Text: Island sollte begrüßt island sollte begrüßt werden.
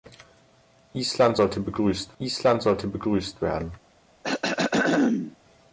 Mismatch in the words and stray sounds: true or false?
true